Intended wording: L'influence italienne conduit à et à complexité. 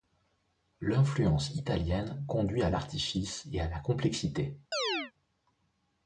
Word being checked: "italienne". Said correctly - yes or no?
yes